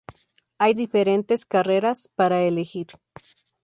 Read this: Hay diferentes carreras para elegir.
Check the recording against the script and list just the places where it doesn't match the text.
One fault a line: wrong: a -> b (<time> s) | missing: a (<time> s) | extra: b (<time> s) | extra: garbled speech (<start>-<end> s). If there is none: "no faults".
no faults